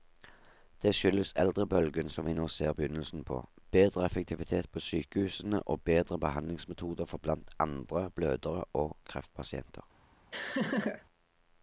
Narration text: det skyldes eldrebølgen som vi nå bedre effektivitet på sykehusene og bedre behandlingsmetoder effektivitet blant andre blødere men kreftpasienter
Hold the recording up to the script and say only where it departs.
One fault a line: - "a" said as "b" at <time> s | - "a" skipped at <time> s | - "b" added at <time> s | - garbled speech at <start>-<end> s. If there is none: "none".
- "ser begynnelsen på" added at 2.5 s
- "effektivitet" said as "for" at 7.0 s
- "men" said as "og" at 8.7 s